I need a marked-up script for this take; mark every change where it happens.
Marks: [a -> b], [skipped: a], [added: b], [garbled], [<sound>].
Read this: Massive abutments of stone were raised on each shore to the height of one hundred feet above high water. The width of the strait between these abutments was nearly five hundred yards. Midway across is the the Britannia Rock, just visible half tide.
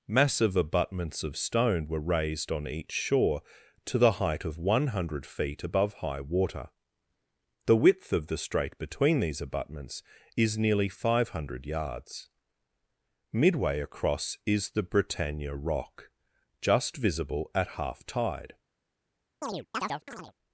Massive abutments of stone were raised on each shore to the height of one hundred feet above high water. The width of the strait between these abutments [was -> is] nearly five hundred yards. Midway across is the [skipped: the] Britannia Rock, just visible [added: at] half tide. [chirp]